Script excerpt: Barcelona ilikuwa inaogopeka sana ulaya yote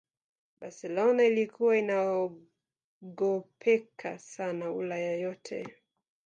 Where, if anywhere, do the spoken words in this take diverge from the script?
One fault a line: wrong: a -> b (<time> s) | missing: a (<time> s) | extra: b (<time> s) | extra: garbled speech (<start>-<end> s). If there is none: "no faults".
no faults